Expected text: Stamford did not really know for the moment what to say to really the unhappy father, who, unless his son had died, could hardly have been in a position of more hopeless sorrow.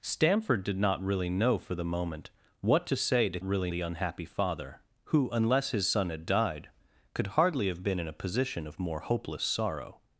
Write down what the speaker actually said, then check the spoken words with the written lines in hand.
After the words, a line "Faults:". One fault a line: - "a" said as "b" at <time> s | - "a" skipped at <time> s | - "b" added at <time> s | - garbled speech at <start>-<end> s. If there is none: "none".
Stamford did not really know for the moment what to say to really the unhappy father, who, unless his son had died, could hardly have been in a position of more hopeless sorrow.
Faults:
none